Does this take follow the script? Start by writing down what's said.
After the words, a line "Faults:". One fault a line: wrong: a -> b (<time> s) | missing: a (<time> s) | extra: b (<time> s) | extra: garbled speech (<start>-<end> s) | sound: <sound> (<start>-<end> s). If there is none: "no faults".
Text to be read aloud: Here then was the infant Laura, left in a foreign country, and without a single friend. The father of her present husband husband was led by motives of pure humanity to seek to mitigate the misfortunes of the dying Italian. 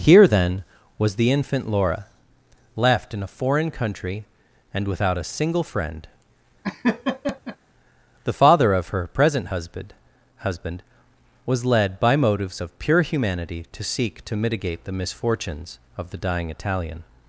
Here then was the infant Laura, left in a foreign country, and without a single friend. The father of her present husband husband was led by motives of pure humanity to seek to mitigate the misfortunes of the dying Italian.
Faults:
sound: laugh (6.6-7.6 s)